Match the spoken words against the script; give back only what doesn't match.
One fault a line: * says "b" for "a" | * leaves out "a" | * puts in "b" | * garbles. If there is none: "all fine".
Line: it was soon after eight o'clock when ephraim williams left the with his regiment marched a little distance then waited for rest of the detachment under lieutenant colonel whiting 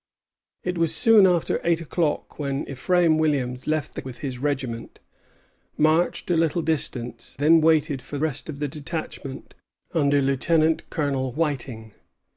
all fine